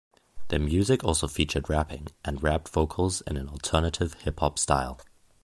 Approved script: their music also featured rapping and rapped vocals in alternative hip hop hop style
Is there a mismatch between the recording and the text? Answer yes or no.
yes